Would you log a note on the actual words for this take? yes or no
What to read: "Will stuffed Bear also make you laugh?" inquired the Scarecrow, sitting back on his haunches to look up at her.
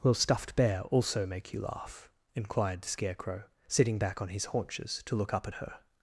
no